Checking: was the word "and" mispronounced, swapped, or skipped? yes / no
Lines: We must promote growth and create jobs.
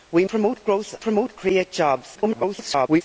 yes